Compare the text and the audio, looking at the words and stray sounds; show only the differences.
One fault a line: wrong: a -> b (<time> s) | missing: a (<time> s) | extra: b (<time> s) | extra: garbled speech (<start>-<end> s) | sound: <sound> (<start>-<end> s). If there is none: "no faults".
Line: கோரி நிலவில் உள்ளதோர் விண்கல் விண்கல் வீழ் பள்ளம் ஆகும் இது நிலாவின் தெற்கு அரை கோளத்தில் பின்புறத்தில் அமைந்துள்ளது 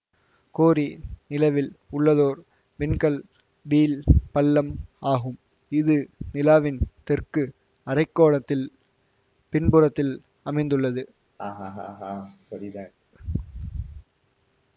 missing: விண்கல் (3.2 s)
sound: laugh (11.4-12.9 s)